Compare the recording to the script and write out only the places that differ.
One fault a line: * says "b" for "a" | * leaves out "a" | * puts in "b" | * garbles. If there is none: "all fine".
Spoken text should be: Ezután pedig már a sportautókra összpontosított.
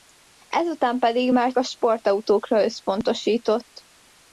all fine